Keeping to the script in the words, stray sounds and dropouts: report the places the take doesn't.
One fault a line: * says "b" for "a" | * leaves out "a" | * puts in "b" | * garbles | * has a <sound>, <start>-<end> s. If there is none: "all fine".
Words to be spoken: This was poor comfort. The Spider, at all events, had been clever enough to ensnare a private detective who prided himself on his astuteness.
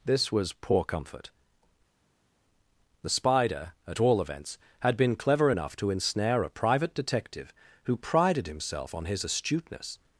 all fine